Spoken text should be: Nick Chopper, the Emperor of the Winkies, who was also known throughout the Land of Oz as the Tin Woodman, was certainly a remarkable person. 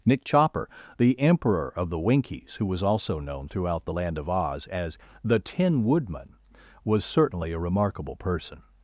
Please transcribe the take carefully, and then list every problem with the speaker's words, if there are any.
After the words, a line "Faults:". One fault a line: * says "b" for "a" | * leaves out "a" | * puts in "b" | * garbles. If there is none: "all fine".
Nick Chopper, the Emperor of the Winkies, who was also known throughout the Land of Oz as the Tin Woodman, was certainly a remarkable person.
Faults:
all fine